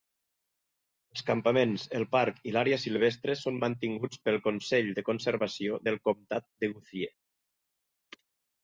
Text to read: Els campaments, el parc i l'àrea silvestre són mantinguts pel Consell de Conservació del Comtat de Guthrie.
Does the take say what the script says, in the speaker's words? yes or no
yes